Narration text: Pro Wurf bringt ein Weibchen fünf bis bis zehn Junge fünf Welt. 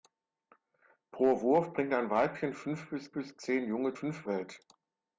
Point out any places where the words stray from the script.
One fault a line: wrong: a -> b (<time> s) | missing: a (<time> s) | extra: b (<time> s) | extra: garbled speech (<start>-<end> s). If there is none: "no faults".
no faults